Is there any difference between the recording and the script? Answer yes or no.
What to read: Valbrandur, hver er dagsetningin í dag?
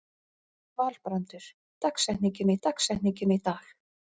yes